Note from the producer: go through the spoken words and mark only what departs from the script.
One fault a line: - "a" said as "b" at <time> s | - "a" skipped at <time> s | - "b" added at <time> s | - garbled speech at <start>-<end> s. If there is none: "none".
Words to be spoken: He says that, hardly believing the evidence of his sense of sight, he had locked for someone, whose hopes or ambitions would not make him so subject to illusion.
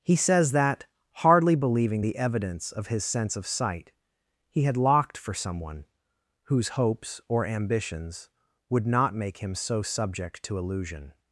none